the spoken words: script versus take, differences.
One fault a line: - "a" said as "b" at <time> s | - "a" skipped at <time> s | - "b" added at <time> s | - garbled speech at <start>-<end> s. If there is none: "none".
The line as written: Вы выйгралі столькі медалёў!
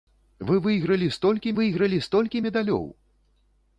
- "выйгралі столькі" added at 1.6 s